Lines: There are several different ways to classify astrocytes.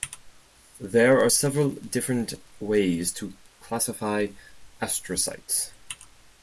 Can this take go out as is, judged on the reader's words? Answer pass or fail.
pass